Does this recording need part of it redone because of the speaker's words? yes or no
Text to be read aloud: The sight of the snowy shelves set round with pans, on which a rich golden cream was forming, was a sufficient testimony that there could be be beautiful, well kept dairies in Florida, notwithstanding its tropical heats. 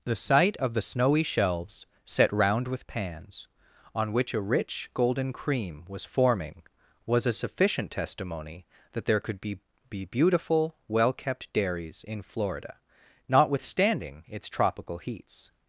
no